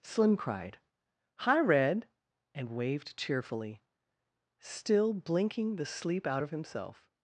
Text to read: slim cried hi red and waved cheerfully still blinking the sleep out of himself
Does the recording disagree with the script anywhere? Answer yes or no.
no